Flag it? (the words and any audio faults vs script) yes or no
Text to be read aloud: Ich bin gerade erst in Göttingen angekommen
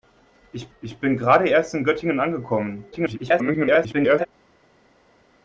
yes